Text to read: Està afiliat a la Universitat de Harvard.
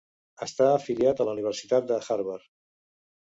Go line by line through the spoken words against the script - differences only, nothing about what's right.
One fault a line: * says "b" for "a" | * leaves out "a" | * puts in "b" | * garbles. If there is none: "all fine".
all fine